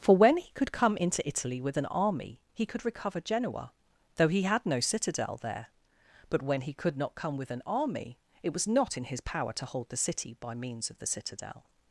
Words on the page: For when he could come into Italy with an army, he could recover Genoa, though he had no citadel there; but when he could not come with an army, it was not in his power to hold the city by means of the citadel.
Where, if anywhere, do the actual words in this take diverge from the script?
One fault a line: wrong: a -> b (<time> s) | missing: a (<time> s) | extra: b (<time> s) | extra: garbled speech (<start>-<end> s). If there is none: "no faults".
no faults